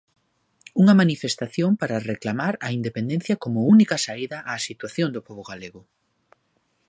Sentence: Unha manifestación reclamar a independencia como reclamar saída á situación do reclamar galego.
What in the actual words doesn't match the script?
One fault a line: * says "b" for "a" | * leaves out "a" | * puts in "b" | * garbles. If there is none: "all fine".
* puts in "para"
* says "única" for "reclamar"
* says "pobo" for "reclamar"